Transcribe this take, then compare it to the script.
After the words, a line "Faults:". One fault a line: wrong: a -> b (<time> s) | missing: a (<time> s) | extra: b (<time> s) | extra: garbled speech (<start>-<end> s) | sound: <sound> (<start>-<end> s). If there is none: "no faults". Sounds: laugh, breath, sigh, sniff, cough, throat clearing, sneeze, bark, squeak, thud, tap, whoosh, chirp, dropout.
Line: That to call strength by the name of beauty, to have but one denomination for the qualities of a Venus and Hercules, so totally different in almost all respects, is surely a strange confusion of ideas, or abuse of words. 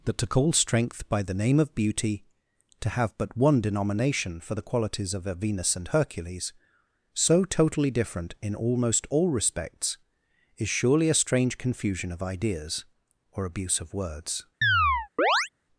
That to call strength by the name of beauty, to have but one denomination for the qualities of a Venus and Hercules, so totally different in almost all respects, is surely a strange confusion of ideas, or abuse of words.
Faults:
sound: chirp (14.6-15.5 s)